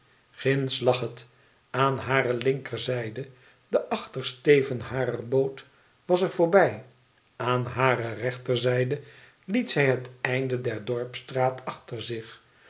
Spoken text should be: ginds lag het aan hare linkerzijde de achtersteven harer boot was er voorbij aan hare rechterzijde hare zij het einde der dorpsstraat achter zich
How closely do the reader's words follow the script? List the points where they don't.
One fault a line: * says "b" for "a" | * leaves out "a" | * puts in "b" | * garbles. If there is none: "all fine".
* says "liet" for "hare"